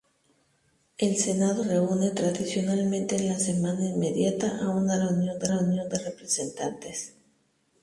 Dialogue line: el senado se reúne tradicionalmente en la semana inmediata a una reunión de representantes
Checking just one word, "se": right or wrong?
wrong